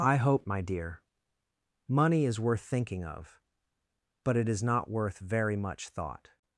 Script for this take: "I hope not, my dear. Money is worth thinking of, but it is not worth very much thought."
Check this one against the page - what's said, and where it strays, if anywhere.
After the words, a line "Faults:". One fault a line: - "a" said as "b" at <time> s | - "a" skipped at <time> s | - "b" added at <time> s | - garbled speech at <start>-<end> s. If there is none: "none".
"I hope my dear. Money is worth thinking of, but it is not worth very much thought."
Faults:
- "not" skipped at 0.5 s